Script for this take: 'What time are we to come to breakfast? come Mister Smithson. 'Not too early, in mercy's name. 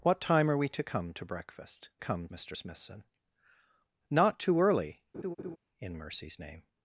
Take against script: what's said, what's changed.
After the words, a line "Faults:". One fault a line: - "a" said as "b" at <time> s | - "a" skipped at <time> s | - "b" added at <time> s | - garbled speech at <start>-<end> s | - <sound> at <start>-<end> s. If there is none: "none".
'What time are we to come to breakfast? come Mister Smithson. 'Not too early, in mercy's name.
Faults:
- laugh at 5.1-5.6 s